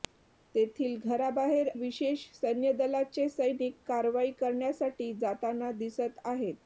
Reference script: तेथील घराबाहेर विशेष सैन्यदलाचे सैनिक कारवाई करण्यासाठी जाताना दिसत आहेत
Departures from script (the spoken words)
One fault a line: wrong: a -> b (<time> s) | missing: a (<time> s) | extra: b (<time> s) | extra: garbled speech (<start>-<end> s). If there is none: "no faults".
no faults